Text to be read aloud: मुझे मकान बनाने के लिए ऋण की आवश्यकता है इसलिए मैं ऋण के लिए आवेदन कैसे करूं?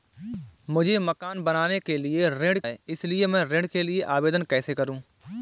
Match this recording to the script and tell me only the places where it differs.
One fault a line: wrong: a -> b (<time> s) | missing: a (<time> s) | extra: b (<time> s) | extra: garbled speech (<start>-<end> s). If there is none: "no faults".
missing: की आवश्यकता (2.6 s)